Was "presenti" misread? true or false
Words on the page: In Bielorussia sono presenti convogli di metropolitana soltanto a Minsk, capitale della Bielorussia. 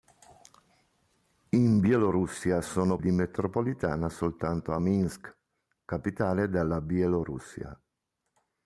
true